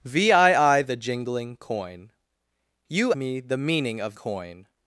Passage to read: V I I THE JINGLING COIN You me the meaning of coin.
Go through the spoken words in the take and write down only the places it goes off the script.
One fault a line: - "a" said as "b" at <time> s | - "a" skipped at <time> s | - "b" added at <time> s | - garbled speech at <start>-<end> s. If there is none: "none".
none